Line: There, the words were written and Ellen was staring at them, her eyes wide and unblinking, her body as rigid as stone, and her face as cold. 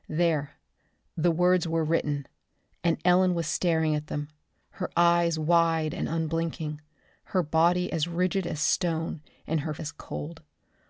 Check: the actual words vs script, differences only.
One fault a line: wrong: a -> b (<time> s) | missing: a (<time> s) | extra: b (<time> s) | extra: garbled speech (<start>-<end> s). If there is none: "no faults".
missing: face (9.8 s)